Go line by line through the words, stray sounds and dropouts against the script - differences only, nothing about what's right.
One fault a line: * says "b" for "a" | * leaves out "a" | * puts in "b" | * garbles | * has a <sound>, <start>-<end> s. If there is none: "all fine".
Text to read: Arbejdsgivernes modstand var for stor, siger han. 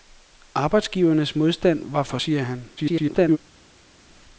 * leaves out "stor"
* garbles